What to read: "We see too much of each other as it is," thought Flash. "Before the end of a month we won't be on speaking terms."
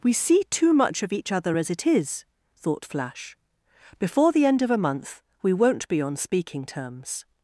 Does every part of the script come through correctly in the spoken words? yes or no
yes